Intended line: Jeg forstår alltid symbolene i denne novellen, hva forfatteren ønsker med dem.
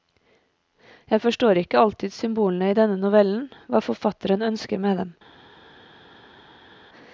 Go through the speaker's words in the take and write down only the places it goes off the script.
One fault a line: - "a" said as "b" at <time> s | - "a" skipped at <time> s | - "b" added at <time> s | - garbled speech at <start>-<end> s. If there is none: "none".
- "ikke" added at 1.6 s